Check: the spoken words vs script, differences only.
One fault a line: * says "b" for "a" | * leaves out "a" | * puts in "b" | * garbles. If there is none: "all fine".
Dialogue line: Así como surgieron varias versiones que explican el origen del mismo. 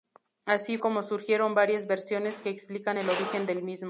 all fine